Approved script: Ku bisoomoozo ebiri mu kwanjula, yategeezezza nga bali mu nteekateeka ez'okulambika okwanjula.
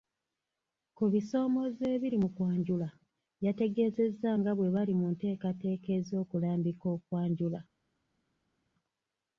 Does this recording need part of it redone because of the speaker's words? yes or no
yes